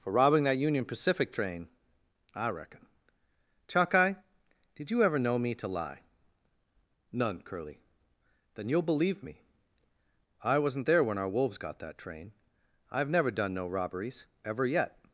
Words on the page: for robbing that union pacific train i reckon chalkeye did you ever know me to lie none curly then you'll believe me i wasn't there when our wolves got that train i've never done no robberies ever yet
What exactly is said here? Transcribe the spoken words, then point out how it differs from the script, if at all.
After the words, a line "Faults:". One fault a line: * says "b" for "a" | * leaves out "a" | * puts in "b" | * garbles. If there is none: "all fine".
for robbing that union pacific train i reckon chalkeye did you ever know me to lie none curly then you'll believe me i wasn't there when our wolves got that train i've never done no robberies ever yet
Faults:
all fine